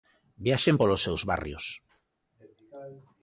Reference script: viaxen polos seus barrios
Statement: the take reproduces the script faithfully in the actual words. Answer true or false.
true